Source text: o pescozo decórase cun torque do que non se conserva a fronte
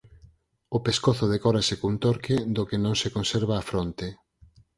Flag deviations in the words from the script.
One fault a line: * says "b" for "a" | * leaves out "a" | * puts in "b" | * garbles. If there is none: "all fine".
all fine